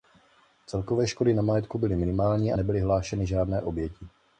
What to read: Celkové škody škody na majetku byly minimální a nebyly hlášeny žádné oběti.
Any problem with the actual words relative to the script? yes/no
yes